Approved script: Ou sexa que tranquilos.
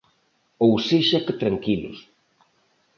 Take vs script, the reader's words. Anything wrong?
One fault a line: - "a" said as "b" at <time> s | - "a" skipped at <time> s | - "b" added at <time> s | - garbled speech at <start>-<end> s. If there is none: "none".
none